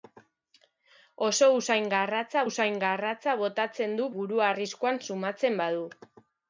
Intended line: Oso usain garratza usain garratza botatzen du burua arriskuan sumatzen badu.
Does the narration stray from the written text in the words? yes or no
no